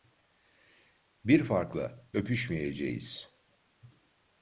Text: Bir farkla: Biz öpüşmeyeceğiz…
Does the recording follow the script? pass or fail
fail